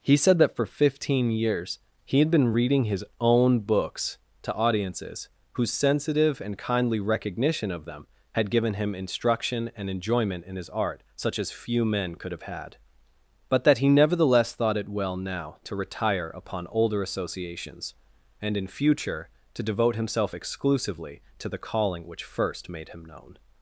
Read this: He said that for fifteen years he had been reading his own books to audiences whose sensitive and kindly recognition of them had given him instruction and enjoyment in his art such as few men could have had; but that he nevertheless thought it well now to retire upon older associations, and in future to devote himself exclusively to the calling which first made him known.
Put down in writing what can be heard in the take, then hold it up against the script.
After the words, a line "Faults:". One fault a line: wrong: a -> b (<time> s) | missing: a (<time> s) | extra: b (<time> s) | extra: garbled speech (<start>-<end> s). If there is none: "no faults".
He said that for fifteen years he had been reading his own books to audiences whose sensitive and kindly recognition of them had given him instruction and enjoyment in his art such as few men could have had; but that he nevertheless thought it well now to retire upon older associations, and in future to devote himself exclusively to the calling which first made him known.
Faults:
no faults